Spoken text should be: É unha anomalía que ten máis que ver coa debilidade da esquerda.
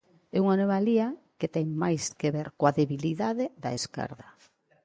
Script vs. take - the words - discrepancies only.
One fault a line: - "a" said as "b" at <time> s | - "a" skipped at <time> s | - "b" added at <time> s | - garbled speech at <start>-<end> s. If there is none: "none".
none